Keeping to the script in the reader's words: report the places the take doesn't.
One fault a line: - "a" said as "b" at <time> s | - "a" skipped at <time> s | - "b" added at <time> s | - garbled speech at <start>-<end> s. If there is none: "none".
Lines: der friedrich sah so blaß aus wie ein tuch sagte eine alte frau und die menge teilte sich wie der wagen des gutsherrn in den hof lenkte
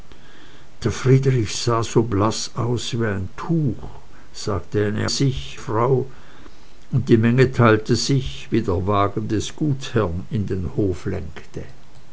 - "alte" said as "sich" at 5.1 s